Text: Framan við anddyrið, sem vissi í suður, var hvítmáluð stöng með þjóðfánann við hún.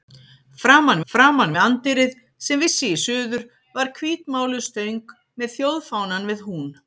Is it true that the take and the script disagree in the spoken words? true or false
true